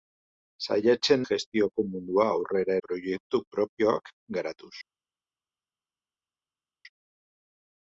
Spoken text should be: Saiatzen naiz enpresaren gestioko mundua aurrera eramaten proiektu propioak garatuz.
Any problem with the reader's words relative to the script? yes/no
yes